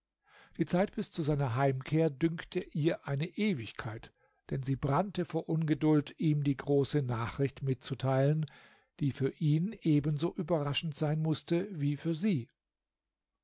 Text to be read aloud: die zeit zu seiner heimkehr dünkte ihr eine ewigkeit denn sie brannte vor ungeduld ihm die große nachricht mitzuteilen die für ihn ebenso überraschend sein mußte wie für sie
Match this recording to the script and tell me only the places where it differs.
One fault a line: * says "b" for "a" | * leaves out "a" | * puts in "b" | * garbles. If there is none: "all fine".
* puts in "bis"